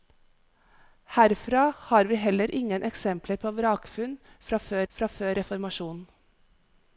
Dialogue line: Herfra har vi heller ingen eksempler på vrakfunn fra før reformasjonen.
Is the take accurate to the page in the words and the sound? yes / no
no